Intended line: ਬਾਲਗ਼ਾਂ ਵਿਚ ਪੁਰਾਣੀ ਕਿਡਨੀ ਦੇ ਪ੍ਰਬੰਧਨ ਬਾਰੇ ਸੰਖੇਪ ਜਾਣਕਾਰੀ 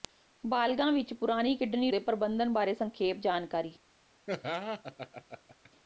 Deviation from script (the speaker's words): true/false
false